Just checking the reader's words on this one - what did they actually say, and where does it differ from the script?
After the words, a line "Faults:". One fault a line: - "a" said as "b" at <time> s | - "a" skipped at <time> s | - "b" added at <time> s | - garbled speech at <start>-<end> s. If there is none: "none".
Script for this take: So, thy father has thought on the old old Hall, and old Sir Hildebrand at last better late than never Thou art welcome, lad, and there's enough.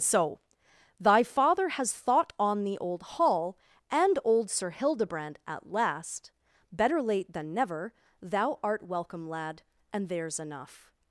So, thy father has thought on the old Hall, and old Sir Hildebrand at last better late than never Thou art welcome, lad, and there's enough.
Faults:
- "old" skipped at 3.0 s